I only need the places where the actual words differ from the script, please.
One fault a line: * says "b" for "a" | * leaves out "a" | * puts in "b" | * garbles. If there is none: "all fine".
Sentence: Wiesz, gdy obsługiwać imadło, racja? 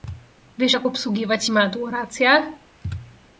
* says "jak" for "gdy"